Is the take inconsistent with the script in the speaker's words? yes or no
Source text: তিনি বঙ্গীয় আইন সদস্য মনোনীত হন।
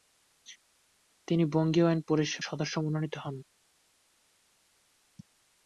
no